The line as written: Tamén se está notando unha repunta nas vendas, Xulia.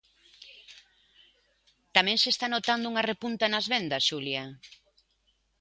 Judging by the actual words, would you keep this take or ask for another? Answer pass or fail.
pass